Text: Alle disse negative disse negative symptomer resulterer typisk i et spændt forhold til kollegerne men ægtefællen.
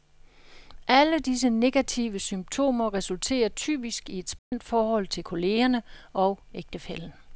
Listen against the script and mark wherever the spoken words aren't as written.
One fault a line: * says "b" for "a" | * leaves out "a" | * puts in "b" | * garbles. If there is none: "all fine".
* leaves out "disse negative"
* says "og" for "men"